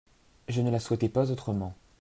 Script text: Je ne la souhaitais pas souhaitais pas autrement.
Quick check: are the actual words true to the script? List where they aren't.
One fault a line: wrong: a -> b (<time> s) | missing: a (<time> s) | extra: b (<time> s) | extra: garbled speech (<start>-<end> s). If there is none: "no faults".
missing: souhaitais pas (1.3 s)